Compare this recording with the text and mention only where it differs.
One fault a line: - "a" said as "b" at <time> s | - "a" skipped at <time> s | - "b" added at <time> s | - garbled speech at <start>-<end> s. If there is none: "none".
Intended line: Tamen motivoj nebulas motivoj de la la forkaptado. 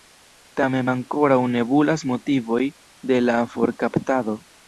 - "motivoj" said as "ankoraŭ" at 0.9 s
- "la" skipped at 3.4 s